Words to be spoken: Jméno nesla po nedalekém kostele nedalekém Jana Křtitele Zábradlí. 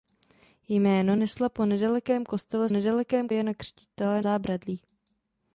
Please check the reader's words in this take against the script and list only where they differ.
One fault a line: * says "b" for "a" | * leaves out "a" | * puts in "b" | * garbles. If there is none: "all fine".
all fine